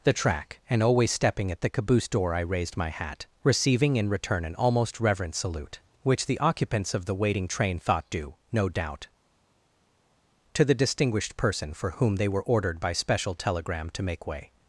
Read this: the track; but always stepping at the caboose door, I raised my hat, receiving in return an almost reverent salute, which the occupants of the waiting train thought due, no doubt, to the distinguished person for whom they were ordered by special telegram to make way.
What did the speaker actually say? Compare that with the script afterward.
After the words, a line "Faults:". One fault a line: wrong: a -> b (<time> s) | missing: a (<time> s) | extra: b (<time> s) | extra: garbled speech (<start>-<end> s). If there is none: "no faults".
the track; and always stepping at the caboose door, I raised my hat, receiving in return an almost reverent salute, which the occupants of the waiting train thought due, no doubt, to the distinguished person for whom they were ordered by special telegram to make way.
Faults:
wrong: but -> and (0.7 s)